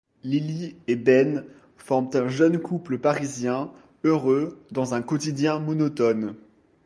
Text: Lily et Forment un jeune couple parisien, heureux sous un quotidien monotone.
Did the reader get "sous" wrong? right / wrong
wrong